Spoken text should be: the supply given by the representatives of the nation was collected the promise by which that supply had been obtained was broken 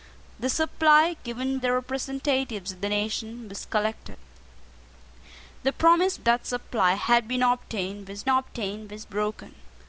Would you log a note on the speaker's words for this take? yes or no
yes